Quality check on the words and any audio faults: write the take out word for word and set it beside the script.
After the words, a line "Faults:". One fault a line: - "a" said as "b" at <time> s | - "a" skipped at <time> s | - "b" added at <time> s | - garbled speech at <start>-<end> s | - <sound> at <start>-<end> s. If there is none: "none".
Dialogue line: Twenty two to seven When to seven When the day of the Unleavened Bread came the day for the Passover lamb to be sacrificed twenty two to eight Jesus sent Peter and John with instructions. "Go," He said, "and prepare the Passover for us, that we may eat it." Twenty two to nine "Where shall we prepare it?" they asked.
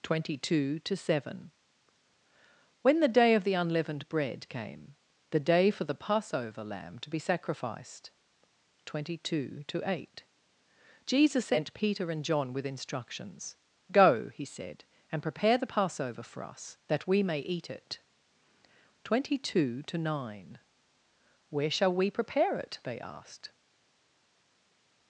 Twenty two to seven When the day of the Unleavened Bread came the day for the Passover lamb to be sacrificed twenty two to eight Jesus sent Peter and John with instructions. "Go," He said, "and prepare the Passover for us, that we may eat it." Twenty two to nine "Where shall we prepare it?" they asked.
Faults:
- "to seven When" skipped at 3.0 s